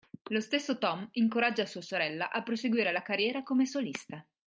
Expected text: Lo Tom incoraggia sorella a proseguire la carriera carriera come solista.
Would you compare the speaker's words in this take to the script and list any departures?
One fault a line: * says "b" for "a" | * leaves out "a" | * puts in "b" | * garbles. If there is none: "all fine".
* puts in "stesso"
* puts in "sua"
* leaves out "carriera"